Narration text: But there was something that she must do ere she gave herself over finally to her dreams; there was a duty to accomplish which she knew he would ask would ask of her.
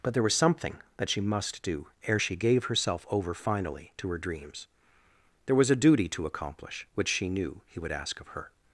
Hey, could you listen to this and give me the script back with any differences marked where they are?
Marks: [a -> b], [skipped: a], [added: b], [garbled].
But there was something that she must do ere she gave herself over finally to her dreams; there was a duty to accomplish which she knew he would ask [skipped: would ask] of her.